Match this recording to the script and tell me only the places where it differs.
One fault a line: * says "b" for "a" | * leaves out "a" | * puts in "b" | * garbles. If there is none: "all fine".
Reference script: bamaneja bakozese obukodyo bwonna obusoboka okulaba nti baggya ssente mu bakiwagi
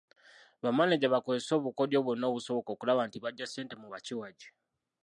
all fine